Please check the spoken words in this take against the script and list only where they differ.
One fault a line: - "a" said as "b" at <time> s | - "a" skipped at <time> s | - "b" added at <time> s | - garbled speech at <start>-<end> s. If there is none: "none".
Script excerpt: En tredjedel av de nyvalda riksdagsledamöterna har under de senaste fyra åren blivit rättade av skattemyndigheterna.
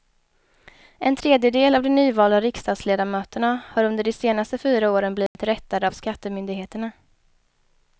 none